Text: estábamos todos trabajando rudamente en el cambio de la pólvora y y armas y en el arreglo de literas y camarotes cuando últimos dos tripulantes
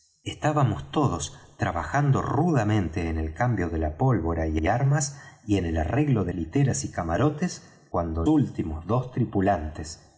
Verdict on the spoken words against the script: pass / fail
pass